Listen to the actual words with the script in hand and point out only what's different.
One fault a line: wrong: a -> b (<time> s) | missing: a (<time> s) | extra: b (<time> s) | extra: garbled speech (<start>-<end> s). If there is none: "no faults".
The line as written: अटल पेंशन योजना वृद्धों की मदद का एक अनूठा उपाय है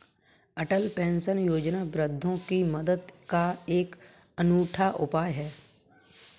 no faults